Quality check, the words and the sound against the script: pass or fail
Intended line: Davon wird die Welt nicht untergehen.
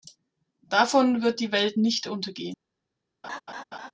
fail